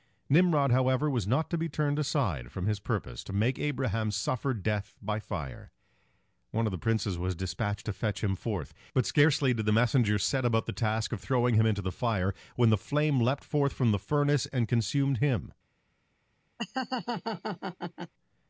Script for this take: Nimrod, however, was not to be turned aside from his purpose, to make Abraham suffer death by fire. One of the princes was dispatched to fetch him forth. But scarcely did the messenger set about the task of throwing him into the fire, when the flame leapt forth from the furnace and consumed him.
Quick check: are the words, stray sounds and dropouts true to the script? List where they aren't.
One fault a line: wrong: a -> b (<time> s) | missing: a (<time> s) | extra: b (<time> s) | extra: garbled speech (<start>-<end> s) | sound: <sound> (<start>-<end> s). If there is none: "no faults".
sound: laugh (16.6-18.1 s)